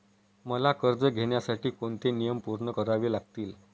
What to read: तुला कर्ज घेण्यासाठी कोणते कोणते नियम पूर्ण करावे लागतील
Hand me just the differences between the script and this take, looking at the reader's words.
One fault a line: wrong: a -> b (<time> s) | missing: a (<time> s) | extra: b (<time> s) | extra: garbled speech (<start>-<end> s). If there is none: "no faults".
wrong: तुला -> मला (0.5 s)
missing: कोणते (2.1 s)